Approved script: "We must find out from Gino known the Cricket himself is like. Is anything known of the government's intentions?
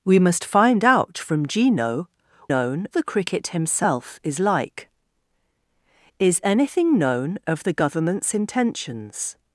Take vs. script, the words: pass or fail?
pass